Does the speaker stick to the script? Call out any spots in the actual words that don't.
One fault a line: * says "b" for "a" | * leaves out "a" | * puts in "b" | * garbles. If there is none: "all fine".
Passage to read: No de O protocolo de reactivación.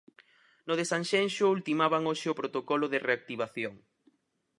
* puts in "Sanxenxo ultimaban hoxe"